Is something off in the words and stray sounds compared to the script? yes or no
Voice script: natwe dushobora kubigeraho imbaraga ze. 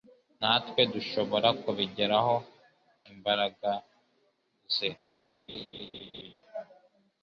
yes